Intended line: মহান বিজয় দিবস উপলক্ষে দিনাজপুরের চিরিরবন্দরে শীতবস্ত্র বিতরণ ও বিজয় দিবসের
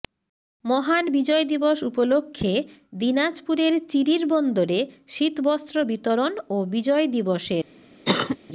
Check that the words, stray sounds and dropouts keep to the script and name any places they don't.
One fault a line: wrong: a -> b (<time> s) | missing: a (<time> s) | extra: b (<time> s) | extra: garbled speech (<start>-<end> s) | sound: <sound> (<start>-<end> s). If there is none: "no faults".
sound: cough (8.1-8.4 s)